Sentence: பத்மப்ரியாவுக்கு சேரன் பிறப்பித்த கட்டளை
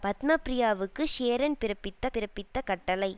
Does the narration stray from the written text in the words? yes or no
yes